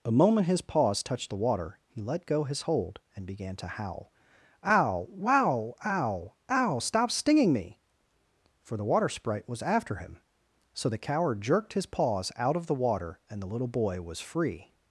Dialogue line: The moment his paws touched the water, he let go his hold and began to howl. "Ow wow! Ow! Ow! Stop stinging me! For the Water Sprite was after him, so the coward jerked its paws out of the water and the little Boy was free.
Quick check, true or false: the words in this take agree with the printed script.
false